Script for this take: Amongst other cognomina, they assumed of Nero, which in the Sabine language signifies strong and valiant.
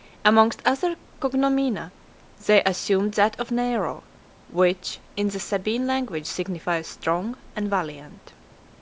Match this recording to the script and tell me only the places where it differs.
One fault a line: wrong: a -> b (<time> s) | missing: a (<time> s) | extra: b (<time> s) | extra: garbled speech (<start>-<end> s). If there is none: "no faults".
extra: that (3.1 s)